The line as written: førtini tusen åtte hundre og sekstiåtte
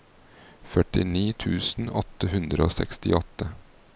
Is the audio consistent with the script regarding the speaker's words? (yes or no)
yes